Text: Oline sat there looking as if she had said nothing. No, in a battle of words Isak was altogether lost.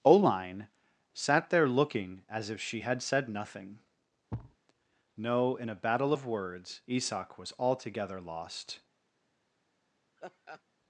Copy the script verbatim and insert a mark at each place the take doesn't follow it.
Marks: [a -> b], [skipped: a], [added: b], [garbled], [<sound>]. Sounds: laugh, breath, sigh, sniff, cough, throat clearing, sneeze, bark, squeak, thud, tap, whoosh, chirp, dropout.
Oline sat there looking as if she had said nothing. [thud] No, in a battle of words Isak was altogether lost. [laugh]